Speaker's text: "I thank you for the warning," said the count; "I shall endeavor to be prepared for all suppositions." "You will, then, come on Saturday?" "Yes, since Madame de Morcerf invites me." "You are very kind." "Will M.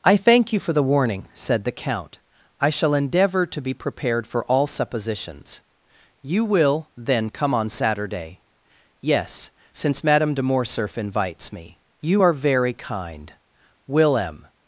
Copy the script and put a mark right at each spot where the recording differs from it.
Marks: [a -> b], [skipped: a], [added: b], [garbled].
"I thank you for the warning," said the count; "I shall endeavor to be prepared for all suppositions." "You will, then, come on Saturday?" "Yes, since Madame de Morcerf invites me." "You are very kind." "Will M.